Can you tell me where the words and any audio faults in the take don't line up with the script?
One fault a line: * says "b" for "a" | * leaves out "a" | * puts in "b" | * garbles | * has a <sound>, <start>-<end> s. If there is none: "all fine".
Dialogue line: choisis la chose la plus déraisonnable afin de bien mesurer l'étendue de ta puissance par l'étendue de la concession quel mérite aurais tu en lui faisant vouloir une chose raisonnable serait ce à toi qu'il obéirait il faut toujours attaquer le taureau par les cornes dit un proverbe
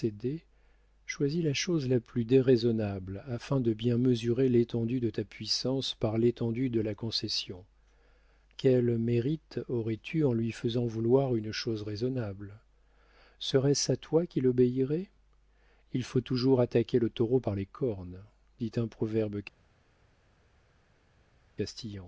all fine